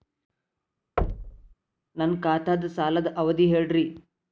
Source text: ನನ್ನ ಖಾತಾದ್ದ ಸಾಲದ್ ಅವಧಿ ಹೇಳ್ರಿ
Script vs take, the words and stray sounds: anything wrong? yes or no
yes